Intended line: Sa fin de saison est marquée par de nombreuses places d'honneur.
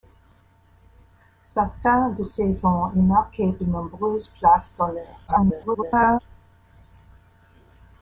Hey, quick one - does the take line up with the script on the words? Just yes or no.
no